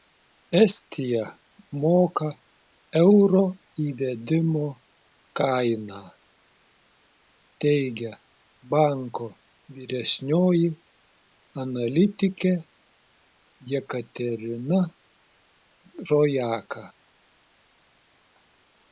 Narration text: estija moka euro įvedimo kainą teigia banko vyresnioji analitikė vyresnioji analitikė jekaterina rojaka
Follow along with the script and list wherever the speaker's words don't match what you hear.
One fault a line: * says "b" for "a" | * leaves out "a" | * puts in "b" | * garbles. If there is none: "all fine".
* leaves out "vyresnioji analitikė"